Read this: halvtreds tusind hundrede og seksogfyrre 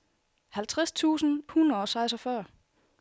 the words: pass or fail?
pass